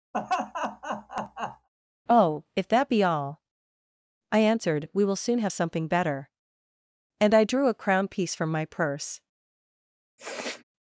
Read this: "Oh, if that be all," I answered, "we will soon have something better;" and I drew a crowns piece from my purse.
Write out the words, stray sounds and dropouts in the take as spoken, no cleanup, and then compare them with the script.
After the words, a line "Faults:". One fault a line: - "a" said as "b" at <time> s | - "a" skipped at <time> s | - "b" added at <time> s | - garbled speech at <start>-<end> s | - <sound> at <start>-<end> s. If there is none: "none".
"Oh, if that be all," I answered, "we will soon have something better;" and I drew a crown piece from my purse.
Faults:
- laugh at 0.1-1.7 s
- "crowns" said as "crown" at 7.7 s
- sniff at 10.2-10.6 s